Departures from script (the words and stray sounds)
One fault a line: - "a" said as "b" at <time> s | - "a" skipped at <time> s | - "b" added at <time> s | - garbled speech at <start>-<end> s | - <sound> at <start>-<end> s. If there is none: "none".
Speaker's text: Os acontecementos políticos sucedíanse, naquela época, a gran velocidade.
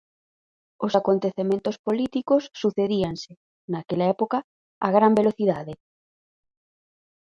none